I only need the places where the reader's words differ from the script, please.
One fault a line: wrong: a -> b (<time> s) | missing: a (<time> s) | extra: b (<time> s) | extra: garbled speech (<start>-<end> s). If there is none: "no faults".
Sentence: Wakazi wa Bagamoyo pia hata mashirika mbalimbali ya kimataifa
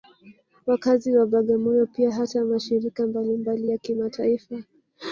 no faults